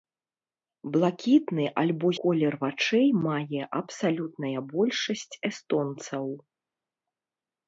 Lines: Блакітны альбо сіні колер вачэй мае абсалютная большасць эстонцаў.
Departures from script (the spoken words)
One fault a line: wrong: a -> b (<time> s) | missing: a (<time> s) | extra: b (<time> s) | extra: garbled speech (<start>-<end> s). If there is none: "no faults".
missing: сіні (2.1 s)